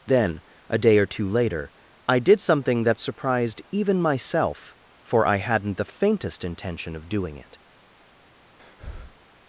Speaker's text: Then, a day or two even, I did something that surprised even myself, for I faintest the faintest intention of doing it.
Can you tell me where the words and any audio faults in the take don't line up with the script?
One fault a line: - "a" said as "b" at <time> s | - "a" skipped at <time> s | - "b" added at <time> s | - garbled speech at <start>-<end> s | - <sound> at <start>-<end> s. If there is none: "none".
- "even" said as "later" at 1.3 s
- "faintest" said as "hadn't" at 5.4 s
- breath at 8.6-9.2 s